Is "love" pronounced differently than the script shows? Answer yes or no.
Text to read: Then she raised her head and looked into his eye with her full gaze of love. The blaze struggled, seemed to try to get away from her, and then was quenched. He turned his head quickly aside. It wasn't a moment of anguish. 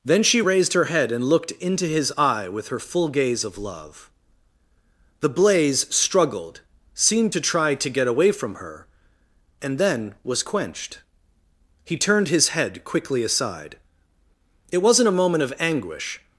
no